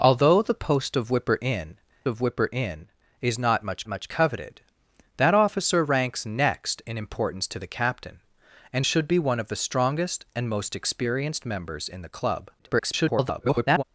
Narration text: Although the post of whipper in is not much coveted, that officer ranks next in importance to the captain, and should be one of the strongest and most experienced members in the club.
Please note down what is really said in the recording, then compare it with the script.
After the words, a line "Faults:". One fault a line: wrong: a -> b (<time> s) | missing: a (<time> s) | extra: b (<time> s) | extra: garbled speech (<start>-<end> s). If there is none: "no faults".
Although the post of whipper in of whipper in is not much much coveted, that officer ranks next in importance to the captain, and should be one of the strongest and most experienced members in the club. [garbled]
Faults:
extra: of whipper in (2.1 s)
extra: much (3.9 s)
extra: garbled speech (12.6-13.8 s)